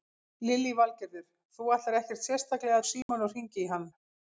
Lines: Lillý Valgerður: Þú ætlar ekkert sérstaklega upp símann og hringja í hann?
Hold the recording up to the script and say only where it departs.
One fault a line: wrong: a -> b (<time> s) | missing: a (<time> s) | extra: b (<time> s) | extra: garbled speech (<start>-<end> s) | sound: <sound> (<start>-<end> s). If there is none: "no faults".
sound: dropout (3.0-3.1 s)